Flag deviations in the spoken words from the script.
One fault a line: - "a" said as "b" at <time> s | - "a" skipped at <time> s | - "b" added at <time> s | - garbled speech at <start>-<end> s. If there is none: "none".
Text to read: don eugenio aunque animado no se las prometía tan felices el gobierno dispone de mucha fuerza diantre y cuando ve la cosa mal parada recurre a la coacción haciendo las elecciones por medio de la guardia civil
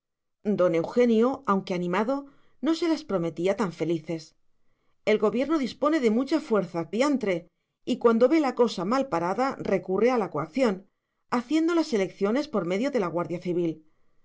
none